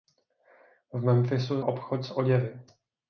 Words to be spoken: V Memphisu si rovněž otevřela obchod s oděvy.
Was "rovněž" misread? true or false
true